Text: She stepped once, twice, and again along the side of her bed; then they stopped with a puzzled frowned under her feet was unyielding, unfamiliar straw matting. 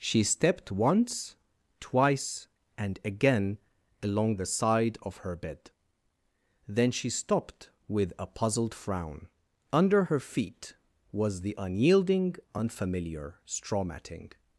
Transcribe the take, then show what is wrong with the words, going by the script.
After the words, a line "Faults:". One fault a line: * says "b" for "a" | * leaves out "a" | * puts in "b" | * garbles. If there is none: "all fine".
She stepped once, twice, and again along the side of her bed; then she stopped with a puzzled frown under her feet was the unyielding, unfamiliar straw matting.
Faults:
* says "she" for "they"
* says "frown" for "frowned"
* puts in "the"